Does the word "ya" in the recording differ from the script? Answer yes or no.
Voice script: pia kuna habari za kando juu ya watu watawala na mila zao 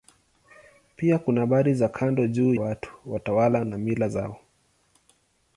yes